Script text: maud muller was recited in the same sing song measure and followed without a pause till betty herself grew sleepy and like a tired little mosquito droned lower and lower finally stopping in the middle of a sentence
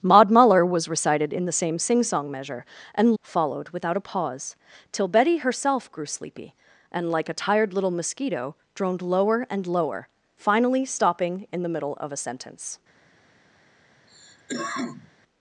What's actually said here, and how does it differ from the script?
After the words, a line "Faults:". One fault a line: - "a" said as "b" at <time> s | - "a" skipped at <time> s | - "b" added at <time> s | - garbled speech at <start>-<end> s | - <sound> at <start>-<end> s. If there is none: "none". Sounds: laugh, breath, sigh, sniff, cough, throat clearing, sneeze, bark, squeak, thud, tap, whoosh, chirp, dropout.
maud muller was recited in the same sing song measure and followed without a pause till betty herself grew sleepy and like a tired little mosquito droned lower and lower finally stopping in the middle of a sentence
Faults:
- cough at 14.1-15.1 s